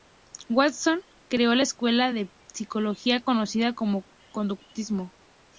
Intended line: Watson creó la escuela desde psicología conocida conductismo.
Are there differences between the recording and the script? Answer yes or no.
yes